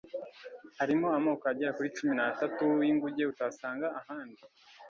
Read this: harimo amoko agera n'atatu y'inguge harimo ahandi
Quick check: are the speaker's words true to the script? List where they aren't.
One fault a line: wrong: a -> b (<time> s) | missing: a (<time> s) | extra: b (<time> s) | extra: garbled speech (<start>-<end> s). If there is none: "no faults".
extra: kuri cumi (1.7 s)
wrong: harimo -> utasanga (3.3 s)